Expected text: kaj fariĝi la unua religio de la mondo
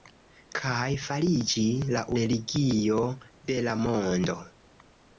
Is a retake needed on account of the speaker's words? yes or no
yes